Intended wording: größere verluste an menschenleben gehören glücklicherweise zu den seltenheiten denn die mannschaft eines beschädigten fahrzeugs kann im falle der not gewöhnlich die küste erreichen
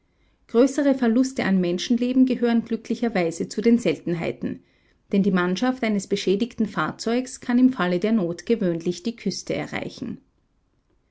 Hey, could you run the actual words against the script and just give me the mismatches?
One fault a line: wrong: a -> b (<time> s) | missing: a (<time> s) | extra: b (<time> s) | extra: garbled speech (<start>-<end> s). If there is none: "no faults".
no faults